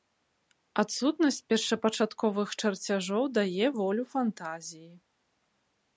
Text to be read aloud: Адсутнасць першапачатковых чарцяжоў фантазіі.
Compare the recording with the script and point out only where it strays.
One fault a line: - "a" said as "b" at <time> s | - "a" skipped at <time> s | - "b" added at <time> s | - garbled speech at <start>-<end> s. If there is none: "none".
- "дае волю" added at 3.4 s